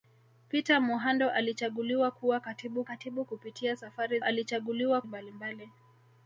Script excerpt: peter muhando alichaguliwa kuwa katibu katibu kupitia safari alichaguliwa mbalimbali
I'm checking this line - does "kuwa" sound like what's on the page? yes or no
yes